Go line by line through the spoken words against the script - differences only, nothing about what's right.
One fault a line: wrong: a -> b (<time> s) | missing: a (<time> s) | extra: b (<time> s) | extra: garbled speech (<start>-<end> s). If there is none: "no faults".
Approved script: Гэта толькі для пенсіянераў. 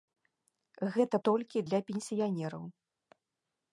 no faults